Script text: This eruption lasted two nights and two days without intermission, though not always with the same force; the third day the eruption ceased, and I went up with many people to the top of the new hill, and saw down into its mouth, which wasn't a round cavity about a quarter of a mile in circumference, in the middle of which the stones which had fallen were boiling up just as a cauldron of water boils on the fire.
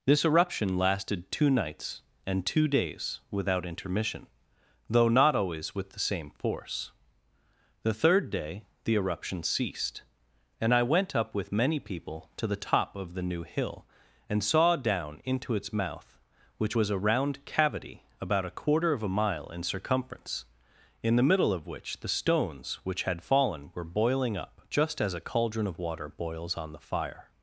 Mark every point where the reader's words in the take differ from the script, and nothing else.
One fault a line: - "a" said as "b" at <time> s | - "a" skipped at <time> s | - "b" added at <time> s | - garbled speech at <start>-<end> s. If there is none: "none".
- "wasn't" said as "was" at 16.7 s